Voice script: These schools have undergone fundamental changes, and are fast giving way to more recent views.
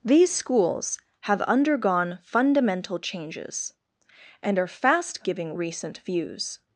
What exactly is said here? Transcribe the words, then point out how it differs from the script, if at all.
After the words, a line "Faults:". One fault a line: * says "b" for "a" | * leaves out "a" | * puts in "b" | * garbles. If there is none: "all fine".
These schools have undergone fundamental changes, and are fast giving recent views.
Faults:
* leaves out "way to more"